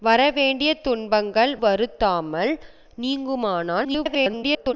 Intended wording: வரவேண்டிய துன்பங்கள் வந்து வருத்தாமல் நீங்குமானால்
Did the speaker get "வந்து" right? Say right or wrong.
wrong